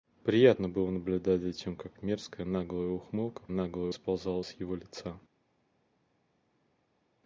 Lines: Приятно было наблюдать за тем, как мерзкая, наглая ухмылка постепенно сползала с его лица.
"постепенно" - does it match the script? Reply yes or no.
no